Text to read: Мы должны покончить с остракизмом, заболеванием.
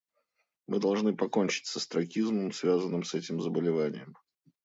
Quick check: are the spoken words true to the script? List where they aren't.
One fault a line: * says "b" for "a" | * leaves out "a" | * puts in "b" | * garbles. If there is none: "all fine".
* puts in "связанным с этим"